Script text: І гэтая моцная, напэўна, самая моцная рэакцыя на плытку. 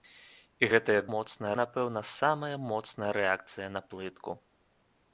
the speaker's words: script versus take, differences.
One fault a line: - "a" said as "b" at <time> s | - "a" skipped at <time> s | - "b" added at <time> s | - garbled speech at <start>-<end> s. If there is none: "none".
none